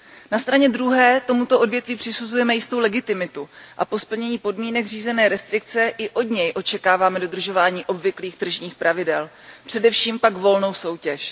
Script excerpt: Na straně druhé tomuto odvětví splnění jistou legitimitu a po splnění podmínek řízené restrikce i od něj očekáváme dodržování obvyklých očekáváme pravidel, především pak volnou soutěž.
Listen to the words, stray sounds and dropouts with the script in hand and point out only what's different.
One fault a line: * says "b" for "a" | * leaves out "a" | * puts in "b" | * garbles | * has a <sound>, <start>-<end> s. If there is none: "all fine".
* says "přisuzujeme" for "splnění"
* says "tržních" for "očekáváme"